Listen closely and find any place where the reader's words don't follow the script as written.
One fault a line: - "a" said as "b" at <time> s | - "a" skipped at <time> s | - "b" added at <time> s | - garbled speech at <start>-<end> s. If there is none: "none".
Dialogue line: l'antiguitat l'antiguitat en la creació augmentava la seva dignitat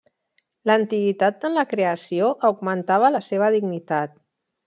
- "l'antiguitat" skipped at 1.5 s